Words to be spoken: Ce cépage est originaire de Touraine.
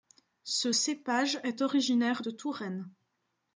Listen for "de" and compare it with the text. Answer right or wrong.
right